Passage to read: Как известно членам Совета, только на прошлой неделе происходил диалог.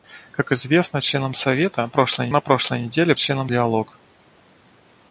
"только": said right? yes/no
no